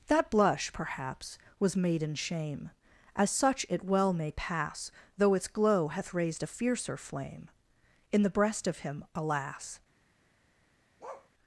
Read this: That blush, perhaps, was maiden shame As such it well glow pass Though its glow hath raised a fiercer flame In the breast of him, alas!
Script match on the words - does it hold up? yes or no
no